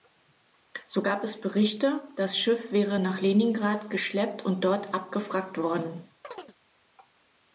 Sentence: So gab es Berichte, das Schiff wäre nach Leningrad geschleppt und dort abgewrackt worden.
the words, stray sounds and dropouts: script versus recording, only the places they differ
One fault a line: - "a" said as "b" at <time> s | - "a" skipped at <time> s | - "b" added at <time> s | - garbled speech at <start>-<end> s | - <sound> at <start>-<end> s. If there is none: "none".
- chirp at 6.2-6.5 s